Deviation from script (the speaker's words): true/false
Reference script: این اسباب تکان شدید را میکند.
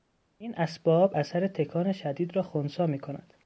true